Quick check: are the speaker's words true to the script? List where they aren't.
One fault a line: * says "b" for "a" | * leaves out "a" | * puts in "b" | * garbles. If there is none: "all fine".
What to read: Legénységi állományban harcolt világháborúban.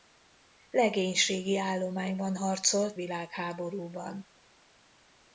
all fine